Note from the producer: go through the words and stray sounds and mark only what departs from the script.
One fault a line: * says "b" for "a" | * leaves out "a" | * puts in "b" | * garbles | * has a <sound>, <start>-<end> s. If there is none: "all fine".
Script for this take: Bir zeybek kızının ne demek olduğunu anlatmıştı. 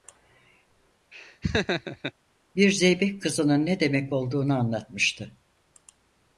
* has a laugh, 1.1-2.1 s